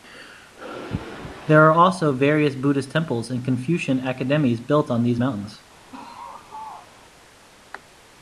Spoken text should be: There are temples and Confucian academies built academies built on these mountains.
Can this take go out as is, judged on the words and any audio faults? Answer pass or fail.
fail